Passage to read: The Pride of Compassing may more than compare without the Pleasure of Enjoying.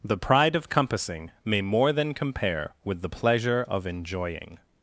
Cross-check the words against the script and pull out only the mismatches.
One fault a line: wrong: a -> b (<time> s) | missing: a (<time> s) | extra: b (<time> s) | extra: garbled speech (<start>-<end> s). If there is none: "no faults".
wrong: without -> with (2.8 s)